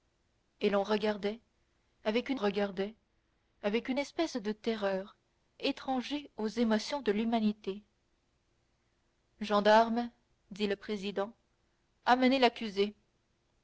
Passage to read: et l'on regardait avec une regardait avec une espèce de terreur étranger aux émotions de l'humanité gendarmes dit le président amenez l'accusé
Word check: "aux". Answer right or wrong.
right